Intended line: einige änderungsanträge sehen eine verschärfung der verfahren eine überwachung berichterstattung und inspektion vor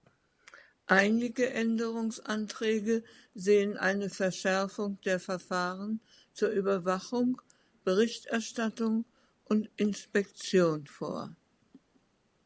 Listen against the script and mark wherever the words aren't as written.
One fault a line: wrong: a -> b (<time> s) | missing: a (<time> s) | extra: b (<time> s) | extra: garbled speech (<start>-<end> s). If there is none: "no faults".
wrong: eine -> zur (6.3 s)